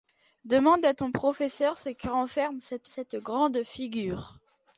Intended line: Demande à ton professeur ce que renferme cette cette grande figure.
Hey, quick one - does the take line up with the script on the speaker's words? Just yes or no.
yes